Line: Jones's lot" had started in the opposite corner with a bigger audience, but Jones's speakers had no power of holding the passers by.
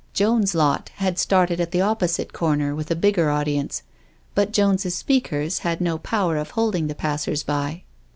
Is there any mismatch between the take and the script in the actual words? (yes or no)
yes